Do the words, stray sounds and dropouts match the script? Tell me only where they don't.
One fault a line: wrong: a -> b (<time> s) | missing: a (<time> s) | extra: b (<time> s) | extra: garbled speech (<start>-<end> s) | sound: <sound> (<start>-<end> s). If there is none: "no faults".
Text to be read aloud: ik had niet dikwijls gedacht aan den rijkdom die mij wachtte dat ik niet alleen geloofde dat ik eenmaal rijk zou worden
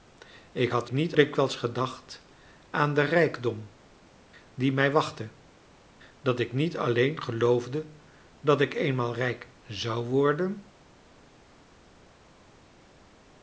no faults